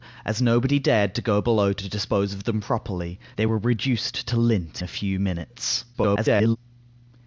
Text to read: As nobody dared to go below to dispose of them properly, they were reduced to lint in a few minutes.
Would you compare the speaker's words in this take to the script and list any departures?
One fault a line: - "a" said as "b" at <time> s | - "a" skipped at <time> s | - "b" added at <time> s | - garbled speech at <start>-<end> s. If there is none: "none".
- "in" skipped at 4.8 s
- garbled speech at 5.9-6.6 s